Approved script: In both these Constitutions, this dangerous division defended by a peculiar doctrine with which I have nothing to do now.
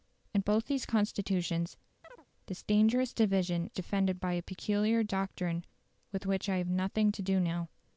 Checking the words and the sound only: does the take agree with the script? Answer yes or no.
no